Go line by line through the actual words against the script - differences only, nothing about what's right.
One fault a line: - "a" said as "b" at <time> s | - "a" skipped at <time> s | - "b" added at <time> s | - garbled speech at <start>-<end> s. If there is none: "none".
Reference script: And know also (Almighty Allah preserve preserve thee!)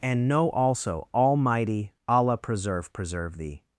none